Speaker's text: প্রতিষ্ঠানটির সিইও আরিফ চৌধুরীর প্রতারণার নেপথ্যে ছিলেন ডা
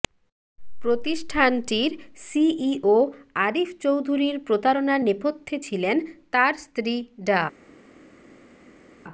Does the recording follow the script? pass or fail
fail